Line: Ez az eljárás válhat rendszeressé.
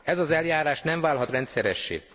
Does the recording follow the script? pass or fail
fail